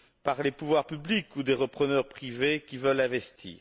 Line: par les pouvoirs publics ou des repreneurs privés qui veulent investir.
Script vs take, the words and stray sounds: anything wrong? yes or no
no